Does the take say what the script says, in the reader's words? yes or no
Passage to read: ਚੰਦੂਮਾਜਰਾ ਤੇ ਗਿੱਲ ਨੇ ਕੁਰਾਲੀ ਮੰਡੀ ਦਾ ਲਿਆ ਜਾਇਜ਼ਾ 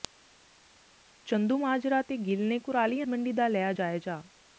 yes